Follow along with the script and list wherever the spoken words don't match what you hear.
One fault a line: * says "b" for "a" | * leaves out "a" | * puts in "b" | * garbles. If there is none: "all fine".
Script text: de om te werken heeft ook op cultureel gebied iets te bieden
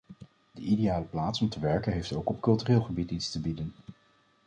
* puts in "ideale plaats"